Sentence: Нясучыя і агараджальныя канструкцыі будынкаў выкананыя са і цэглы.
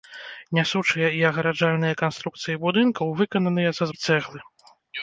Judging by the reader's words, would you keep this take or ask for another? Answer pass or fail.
pass